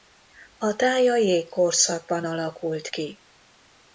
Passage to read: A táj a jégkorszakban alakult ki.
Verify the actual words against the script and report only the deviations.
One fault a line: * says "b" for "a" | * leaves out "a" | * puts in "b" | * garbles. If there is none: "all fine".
all fine